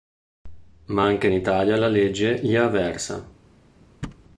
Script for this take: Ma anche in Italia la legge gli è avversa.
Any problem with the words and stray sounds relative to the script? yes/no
yes